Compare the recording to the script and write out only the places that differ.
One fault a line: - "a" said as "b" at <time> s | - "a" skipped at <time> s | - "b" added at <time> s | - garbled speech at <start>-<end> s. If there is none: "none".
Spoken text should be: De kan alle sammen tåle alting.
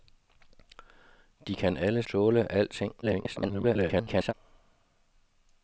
- "sammen" skipped at 2.0 s
- garbled speech at 3.0-4.3 s